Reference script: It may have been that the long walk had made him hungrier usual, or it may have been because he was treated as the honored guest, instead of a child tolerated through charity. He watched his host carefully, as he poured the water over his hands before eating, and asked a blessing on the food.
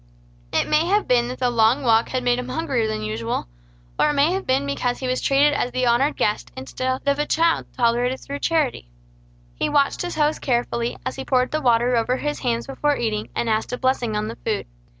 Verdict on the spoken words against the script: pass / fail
fail